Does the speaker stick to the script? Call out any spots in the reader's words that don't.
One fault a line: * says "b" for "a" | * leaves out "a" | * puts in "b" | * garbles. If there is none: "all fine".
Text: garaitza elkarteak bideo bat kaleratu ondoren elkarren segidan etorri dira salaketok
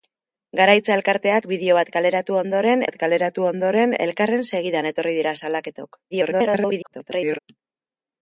* puts in "bat kaleratu ondoren"
* garbles